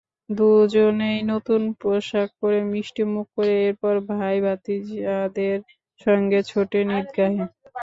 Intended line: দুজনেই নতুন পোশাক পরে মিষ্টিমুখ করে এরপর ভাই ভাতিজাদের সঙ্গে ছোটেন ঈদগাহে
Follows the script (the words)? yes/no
yes